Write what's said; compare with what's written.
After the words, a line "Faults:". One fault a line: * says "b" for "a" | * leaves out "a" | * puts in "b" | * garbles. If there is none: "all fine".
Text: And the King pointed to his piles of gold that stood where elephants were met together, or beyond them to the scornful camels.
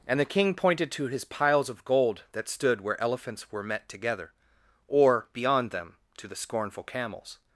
And the King pointed to his piles of gold that stood where elephants were met together, or beyond them to the scornful camels.
Faults:
all fine